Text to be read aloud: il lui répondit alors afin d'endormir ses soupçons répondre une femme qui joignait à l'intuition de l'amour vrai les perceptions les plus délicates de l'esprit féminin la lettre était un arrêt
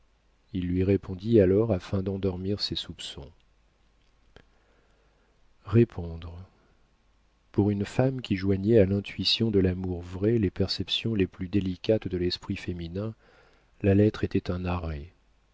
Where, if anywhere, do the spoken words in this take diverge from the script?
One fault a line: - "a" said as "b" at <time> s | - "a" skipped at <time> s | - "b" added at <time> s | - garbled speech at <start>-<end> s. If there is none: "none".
- "pour" added at 7.5 s